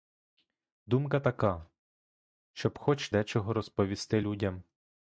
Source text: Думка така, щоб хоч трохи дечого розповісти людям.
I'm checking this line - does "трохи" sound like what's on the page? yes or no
no